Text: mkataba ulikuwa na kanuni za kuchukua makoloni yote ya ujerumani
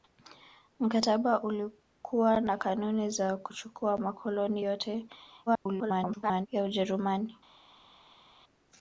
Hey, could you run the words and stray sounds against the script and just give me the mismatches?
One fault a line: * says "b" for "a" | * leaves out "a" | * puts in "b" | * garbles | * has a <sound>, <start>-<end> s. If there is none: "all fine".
* garbles